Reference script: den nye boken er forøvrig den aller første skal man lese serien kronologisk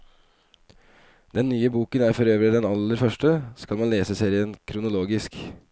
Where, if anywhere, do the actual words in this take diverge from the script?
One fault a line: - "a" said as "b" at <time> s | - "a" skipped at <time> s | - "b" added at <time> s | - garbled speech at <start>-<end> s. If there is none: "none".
none